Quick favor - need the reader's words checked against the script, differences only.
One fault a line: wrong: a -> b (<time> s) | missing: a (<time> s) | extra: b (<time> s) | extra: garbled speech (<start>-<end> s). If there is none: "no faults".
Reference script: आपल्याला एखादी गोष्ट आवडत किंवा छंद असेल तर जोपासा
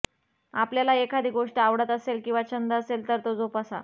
extra: असेल (1.9 s)
extra: तो (3.2 s)